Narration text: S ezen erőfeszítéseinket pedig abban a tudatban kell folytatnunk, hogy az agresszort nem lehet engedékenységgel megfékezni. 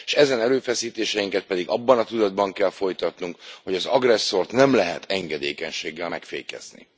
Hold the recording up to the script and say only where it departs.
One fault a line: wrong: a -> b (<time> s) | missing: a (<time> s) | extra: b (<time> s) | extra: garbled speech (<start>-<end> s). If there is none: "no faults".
no faults